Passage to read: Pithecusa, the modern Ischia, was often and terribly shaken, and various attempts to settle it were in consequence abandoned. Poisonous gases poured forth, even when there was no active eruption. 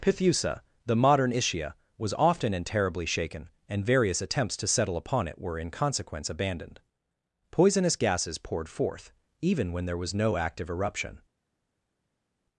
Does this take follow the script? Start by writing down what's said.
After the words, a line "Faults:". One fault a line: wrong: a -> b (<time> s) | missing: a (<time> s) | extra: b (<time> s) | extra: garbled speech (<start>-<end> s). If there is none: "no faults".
Pithecusa, the modern Ischia, was often and terribly shaken, and various attempts to settle upon it were in consequence abandoned. Poisonous gases poured forth, even when there was no active eruption.
Faults:
extra: upon (5.0 s)